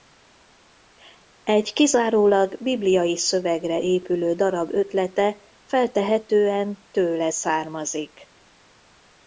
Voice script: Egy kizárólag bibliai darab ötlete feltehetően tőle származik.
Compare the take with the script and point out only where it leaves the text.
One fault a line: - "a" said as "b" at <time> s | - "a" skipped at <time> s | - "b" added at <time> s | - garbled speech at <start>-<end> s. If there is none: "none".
- "szövegre épülő" added at 3.2 s